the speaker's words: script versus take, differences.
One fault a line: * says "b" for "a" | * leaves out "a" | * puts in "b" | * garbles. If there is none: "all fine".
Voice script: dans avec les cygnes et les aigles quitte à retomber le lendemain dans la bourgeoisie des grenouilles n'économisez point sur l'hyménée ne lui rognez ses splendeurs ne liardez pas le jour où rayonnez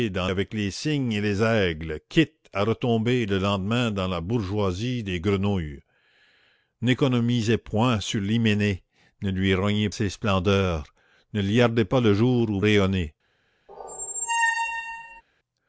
all fine